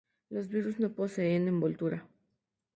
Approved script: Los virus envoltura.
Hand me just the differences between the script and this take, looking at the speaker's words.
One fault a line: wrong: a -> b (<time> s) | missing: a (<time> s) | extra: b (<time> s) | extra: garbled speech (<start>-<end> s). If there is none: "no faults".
extra: no poseen (0.8 s)